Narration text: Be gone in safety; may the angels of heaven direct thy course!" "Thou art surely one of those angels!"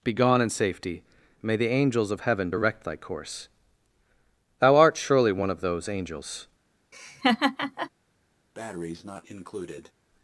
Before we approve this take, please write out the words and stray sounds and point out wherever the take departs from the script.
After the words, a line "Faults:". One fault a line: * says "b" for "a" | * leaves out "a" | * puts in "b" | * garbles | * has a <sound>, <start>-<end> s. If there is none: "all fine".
Be gone in safety; may the angels of heaven direct thy course!" "Thou art surely one of those angels!"
Faults:
* has a laugh, 6.9-7.9 s
* has a breath, 8.5-9.9 s